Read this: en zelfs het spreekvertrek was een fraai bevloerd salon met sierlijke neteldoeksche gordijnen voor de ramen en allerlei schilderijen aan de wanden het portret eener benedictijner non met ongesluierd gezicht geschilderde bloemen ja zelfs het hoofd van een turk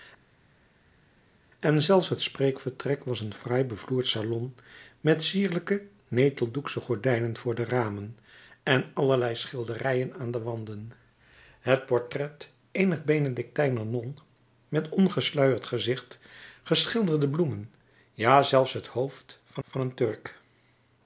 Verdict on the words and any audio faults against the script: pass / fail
fail